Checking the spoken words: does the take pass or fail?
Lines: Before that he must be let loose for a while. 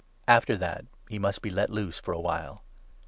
fail